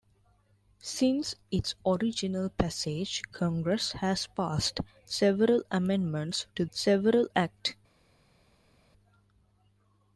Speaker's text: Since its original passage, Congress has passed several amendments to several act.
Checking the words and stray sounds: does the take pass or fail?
pass